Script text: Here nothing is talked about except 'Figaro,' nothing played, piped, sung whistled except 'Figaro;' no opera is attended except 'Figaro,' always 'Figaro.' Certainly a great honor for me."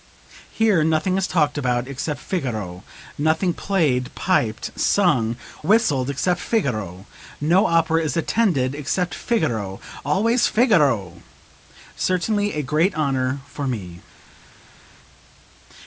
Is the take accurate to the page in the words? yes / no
yes